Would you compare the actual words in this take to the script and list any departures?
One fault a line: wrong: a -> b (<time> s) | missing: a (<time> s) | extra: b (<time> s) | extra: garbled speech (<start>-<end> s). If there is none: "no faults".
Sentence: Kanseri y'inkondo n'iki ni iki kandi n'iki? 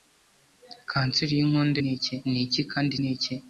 no faults